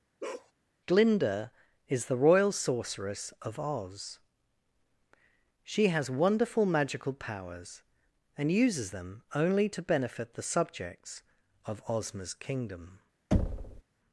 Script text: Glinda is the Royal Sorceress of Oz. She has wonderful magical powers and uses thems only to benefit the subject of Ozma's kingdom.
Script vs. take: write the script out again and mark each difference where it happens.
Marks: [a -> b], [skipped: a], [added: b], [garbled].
Glinda is the Royal Sorceress of Oz. She has wonderful magical powers and uses [thems -> them] only to benefit the [subject -> subjects] of Ozma's kingdom.